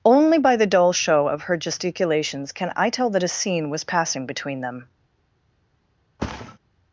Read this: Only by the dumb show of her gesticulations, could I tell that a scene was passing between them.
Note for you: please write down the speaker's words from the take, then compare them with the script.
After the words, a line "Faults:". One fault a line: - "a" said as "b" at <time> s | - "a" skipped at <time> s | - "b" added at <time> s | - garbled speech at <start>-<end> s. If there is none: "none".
Only by the dull show of her gesticulations, can I tell that a scene was passing between them.
Faults:
- "dumb" said as "dull" at 0.7 s
- "could" said as "can" at 2.5 s